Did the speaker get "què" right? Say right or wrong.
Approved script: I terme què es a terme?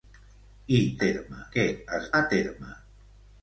right